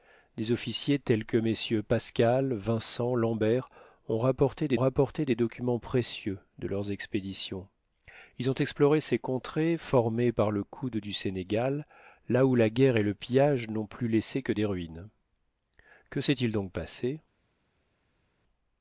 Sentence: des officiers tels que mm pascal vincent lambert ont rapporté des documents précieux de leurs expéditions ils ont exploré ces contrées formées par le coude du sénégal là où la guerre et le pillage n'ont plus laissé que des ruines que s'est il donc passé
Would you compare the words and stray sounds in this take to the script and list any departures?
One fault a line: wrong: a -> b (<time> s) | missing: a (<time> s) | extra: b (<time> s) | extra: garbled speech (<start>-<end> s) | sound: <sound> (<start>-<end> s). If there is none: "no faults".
extra: rapporté des (4.7 s)